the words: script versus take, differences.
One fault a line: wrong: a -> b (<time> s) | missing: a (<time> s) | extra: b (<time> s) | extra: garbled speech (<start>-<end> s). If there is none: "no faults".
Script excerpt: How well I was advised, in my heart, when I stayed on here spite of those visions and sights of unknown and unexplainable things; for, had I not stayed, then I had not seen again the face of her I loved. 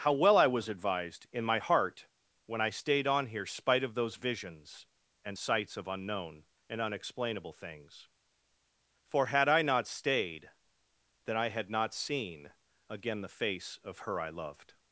no faults